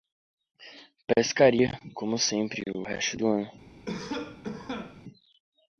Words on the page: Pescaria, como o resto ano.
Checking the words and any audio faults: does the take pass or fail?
fail